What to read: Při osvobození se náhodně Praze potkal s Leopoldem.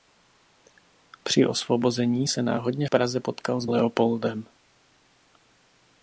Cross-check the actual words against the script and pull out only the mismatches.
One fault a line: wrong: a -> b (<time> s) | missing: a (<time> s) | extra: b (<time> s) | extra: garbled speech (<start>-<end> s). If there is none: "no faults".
no faults